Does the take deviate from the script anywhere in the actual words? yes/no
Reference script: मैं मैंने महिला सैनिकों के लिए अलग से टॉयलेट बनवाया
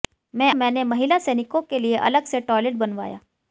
no